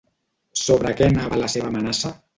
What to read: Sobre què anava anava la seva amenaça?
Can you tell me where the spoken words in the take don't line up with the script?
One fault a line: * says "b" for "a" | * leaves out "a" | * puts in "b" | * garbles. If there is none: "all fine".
* leaves out "anava"